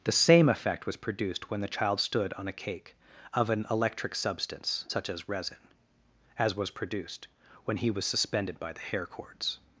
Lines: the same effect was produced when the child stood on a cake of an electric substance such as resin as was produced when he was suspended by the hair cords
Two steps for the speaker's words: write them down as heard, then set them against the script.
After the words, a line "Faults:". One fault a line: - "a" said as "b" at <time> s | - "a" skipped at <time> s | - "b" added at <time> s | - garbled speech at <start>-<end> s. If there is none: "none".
the same effect was produced when the child stood on a cake of an electric substance such as resin as was produced when he was suspended by the hair cords
Faults:
none